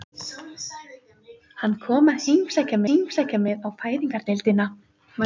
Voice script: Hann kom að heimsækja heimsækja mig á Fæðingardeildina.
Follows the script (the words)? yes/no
yes